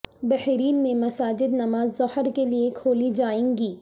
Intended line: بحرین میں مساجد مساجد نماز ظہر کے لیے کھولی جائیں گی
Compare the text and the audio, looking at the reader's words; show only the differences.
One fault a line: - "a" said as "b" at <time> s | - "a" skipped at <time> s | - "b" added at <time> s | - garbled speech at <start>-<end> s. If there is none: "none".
- "مساجد" skipped at 1.5 s